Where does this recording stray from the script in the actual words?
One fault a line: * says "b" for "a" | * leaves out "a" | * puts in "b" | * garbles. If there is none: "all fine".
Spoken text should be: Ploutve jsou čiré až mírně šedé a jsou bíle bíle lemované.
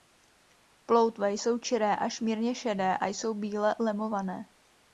* leaves out "bíle"